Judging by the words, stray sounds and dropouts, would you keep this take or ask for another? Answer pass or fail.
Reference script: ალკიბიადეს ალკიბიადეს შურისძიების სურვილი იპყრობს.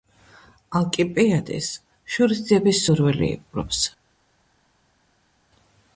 fail